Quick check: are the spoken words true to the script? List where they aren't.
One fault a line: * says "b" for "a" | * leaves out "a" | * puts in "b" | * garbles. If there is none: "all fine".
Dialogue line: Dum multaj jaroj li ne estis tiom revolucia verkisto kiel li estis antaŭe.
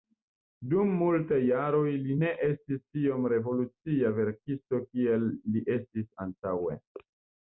all fine